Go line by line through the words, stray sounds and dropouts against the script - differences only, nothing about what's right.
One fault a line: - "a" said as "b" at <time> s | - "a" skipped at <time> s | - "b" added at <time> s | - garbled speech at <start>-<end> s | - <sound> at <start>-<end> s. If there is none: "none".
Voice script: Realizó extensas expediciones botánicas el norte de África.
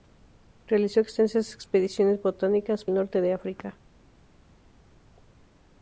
none